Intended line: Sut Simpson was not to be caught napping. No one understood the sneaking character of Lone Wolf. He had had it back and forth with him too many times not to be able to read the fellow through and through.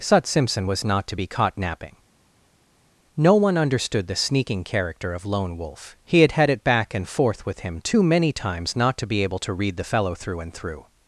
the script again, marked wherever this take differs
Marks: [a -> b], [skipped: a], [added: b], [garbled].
Sut Simpson was not to be caught napping. No one understood the sneaking character of Lone Wolf. He had had it back and forth with him too many times not to be able to read the fellow through and through.